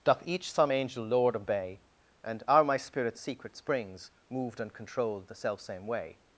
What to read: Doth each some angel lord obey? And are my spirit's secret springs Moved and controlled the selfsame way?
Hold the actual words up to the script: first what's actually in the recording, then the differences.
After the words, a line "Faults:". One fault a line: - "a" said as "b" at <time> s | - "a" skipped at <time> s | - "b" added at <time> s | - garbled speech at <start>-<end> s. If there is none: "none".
Doth each some angel lord obey? And are my spirit's secret springs Moved and controlled the selfsame way?
Faults:
none